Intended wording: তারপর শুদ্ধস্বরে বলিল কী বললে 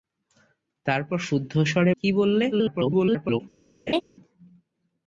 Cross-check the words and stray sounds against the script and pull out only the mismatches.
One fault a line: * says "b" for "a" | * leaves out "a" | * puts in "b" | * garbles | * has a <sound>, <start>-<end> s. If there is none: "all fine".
* leaves out "বলিল"
* garbles
* has a laugh, 3.9-4.0 s